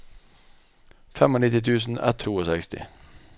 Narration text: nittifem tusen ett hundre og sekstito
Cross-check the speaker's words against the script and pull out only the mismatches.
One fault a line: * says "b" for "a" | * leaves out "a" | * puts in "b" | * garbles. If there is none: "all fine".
* leaves out "hundre"